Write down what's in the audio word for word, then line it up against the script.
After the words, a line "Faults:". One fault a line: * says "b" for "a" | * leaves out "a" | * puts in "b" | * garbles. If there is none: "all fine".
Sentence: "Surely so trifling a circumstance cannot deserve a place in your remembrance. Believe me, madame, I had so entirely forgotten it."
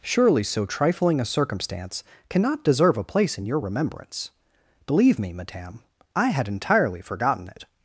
"Surely so trifling a circumstance cannot deserve a place in your remembrance. Believe me, madame, I had entirely forgotten it."
Faults:
* leaves out "so"